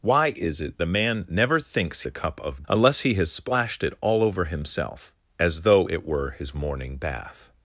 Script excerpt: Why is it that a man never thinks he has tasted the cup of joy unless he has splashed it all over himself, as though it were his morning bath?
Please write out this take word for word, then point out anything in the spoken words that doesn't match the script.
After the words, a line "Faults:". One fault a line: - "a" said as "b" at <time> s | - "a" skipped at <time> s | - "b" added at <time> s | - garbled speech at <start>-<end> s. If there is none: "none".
Why is it a man never thinks the cup of unless he has splashed it all over himself, as though it were his morning bath?
Faults:
- "that" skipped at 0.8 s
- "he has tasted" skipped at 2.0 s
- "joy" skipped at 2.6 s